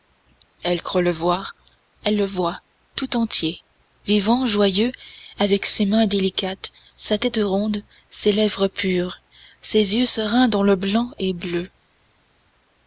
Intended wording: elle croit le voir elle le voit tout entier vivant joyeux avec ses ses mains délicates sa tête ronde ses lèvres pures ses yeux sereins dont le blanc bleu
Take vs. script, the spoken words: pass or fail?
fail